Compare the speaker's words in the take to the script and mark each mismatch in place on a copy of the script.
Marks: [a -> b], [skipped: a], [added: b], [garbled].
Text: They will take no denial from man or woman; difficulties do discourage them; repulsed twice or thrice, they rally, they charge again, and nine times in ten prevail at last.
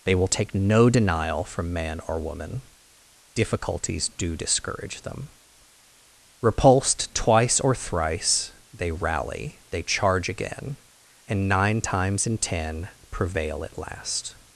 They will take no denial from man or woman; difficulties do discourage them; repulsed twice or thrice, they rally, they charge again, and nine times in ten prevail at last.